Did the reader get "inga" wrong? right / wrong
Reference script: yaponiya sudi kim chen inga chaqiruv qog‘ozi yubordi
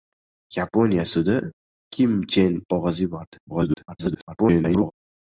wrong